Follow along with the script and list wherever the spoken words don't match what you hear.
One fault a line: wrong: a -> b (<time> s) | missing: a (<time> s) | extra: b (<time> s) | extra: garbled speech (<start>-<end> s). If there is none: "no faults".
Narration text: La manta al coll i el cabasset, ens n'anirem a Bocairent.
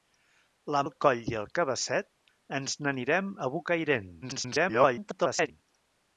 missing: manta (0.8 s)
extra: garbled speech (4.2-5.5 s)